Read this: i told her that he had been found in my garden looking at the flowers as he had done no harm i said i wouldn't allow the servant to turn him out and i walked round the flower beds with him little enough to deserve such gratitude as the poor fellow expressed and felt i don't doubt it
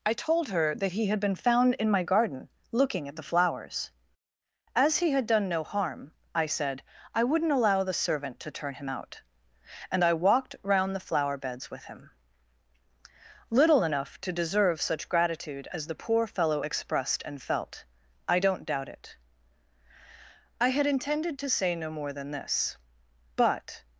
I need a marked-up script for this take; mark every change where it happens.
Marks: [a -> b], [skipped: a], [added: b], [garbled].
i told her that he had been found in my garden looking at the flowers as he had done no harm i said i wouldn't allow the servant to turn him out and i walked round the flower beds with him little enough to deserve such gratitude as the poor fellow expressed and felt i don't doubt it [added: i had intended to say no more than this but]